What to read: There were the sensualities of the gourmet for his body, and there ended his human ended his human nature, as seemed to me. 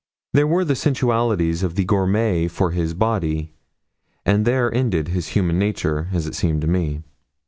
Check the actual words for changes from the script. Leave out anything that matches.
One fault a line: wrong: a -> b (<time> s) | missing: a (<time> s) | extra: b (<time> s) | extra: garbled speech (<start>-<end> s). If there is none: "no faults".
missing: ended his human (5.6 s)
extra: it (6.2 s)